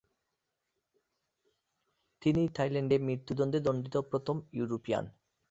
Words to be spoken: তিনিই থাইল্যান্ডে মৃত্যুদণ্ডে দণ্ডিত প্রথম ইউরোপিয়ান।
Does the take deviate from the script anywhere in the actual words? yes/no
no